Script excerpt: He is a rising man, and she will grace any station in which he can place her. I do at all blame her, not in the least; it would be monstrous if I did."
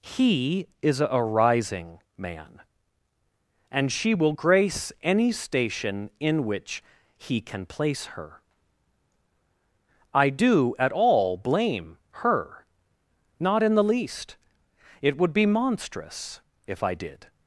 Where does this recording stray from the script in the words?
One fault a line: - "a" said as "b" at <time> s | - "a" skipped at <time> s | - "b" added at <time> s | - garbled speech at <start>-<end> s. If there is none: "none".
none